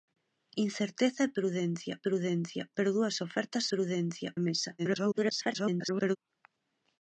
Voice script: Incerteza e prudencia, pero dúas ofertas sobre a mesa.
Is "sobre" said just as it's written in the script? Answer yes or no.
no